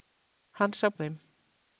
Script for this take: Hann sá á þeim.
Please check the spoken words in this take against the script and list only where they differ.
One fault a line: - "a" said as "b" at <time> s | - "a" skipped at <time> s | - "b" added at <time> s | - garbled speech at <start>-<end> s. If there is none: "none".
none